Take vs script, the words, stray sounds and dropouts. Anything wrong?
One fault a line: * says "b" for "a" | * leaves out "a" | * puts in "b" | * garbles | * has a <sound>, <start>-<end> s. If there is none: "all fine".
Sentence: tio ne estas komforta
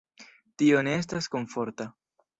all fine